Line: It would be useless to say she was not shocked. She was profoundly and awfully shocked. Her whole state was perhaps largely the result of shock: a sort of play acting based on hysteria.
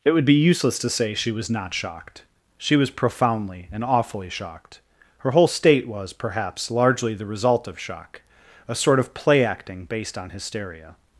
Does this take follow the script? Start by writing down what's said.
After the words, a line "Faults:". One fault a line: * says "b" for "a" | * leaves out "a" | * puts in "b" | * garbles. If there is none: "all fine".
It would be useless to say she was not shocked. She was profoundly and awfully shocked. Her whole state was perhaps largely the result of shock: a sort of play acting based on hysteria.
Faults:
all fine